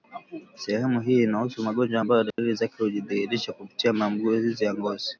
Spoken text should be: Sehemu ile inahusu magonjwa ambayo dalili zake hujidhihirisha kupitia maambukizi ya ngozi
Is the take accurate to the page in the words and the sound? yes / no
no